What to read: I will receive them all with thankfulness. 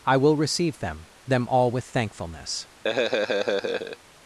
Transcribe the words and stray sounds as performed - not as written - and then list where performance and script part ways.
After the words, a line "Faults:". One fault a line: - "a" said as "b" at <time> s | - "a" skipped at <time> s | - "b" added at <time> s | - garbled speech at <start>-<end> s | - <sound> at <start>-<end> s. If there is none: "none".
I will receive them them all with thankfulness.
Faults:
- "them" added at 1.3 s
- laugh at 2.8-4.0 s